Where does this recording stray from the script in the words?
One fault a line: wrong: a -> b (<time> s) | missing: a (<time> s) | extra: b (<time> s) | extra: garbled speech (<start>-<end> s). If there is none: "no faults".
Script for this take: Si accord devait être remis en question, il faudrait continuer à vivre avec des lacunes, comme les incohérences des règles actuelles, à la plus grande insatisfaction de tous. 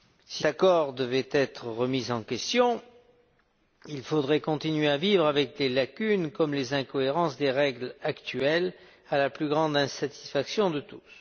no faults